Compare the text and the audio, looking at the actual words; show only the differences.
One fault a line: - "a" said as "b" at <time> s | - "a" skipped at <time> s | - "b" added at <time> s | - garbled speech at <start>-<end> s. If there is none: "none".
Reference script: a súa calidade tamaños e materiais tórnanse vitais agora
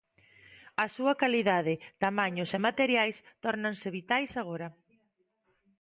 none